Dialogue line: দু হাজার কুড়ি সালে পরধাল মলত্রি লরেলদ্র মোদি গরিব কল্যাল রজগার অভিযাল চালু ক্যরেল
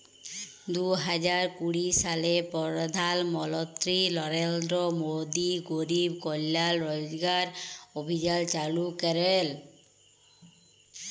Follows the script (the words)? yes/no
yes